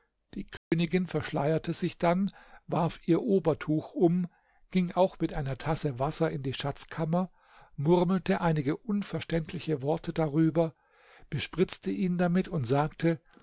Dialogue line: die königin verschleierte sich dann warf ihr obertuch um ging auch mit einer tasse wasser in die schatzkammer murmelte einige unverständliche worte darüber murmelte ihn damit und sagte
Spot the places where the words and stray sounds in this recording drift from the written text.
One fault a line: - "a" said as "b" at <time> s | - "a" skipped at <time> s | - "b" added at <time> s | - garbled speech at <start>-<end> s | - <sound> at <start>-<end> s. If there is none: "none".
- dropout at 0.6-0.7 s
- "murmelte" said as "bespritzte" at 11.3 s